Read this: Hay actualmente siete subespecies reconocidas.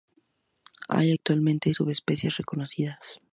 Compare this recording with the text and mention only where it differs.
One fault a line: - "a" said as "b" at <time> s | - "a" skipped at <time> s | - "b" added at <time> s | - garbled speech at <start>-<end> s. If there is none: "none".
- "siete" skipped at 1.7 s